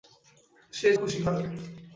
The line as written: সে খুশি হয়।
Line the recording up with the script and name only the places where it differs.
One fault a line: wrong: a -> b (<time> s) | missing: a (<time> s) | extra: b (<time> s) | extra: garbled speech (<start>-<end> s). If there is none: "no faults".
no faults